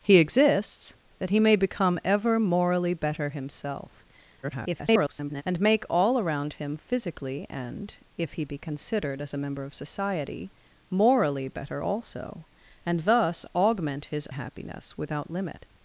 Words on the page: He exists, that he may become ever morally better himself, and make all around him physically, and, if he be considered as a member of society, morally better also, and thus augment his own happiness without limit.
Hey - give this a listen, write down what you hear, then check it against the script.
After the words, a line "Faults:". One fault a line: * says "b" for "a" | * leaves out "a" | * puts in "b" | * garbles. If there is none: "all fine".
He exists, that he may become ever morally better himself, [garbled] and make all around him physically, and, if he be considered as a member of society, morally better also, and thus augment his happiness without limit.
Faults:
* garbles
* leaves out "own"